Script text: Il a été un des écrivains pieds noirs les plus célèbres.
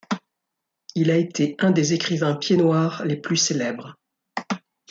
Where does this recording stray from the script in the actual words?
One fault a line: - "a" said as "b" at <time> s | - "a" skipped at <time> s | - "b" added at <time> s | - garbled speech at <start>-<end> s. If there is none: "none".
none